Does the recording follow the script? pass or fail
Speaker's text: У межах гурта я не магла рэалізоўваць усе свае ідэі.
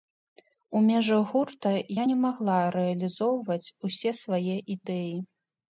pass